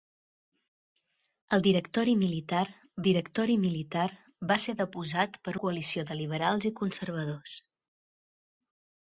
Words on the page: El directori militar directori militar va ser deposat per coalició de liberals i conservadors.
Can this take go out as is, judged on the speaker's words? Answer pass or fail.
pass